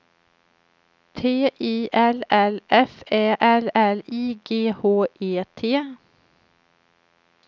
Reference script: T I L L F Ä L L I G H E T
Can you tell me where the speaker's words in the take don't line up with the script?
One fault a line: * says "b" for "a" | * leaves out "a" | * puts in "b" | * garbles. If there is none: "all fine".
all fine